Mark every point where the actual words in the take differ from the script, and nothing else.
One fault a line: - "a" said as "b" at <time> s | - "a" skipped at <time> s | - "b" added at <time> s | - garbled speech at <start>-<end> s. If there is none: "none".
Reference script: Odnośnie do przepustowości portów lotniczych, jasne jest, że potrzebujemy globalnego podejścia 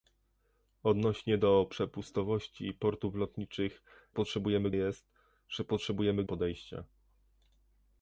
- "jasne" said as "potrzebujemy" at 4.1 s
- "globalnego" skipped at 6.2 s